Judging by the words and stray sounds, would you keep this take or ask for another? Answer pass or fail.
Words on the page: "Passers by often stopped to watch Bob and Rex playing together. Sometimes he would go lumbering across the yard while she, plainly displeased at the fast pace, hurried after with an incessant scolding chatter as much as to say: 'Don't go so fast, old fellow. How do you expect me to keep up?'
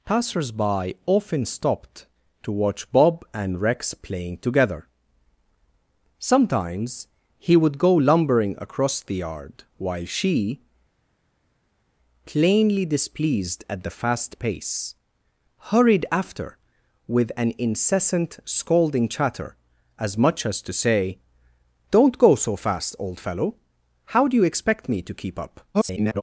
fail